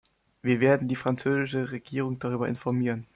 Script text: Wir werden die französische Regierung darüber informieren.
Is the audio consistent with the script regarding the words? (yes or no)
yes